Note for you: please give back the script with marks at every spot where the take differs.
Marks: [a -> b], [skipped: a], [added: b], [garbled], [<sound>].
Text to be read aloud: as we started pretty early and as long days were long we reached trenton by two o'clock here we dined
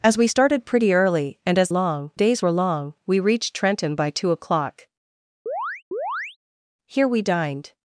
as we started pretty early and as long days were long we reached trenton by two o'clock [chirp] here we dined